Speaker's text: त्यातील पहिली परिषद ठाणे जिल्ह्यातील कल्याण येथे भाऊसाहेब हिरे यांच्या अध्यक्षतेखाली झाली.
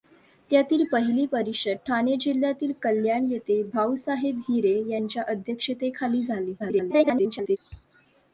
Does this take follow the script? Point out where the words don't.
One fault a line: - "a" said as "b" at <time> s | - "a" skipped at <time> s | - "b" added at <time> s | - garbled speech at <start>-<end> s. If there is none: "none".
- garbled speech at 6.6-7.6 s